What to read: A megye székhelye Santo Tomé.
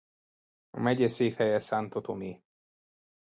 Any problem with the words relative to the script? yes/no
no